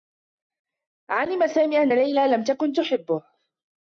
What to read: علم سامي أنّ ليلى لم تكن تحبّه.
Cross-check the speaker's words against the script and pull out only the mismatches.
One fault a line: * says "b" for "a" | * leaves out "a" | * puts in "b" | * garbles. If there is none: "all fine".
all fine